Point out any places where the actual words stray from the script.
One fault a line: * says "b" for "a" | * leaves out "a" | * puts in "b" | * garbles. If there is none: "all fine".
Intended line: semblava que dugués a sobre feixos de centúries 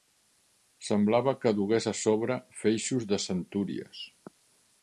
all fine